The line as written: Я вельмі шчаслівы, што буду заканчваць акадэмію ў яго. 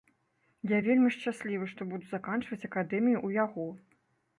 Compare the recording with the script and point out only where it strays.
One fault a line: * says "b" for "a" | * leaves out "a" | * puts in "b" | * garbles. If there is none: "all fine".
all fine